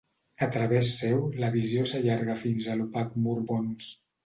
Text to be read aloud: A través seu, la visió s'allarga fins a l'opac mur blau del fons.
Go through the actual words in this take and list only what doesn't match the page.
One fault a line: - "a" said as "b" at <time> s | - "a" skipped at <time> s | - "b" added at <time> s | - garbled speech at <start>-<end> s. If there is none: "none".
- "blau del" skipped at 3.4 s